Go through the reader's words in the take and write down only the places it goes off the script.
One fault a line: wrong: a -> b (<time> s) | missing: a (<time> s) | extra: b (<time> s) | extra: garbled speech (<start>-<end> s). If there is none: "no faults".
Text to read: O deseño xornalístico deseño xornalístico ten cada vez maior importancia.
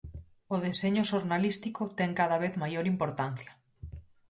missing: deseño xornalístico (1.8 s)